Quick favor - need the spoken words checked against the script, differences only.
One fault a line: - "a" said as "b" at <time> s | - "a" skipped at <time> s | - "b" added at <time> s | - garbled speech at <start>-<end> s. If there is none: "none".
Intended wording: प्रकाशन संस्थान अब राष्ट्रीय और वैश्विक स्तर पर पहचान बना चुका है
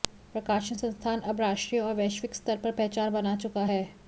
none